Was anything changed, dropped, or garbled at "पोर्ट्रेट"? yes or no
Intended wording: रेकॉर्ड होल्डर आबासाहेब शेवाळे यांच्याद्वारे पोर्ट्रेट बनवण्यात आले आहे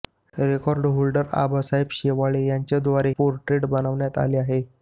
no